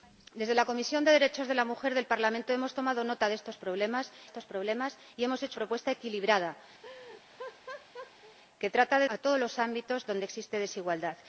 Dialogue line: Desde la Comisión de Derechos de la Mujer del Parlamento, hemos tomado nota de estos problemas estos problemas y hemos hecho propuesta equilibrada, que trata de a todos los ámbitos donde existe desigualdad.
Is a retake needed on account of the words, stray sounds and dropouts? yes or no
yes